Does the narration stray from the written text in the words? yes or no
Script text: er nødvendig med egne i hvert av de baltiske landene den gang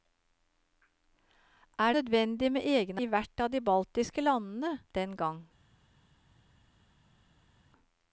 no